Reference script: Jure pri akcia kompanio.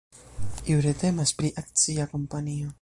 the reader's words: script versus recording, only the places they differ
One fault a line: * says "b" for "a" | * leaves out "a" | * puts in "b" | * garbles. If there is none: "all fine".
* puts in "temas"